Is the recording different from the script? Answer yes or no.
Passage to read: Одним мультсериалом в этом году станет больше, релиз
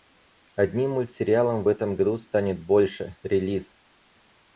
no